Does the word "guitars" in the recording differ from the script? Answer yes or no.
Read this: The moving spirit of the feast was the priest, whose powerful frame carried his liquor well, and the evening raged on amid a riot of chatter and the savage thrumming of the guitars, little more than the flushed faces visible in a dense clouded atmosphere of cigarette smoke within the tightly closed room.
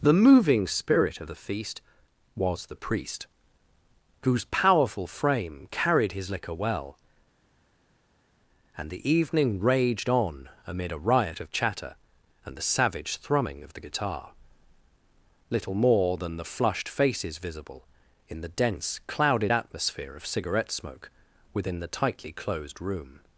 yes